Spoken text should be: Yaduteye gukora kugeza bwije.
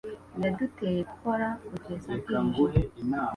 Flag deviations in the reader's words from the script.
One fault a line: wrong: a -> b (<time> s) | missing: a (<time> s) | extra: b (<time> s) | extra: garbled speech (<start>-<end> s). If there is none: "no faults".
no faults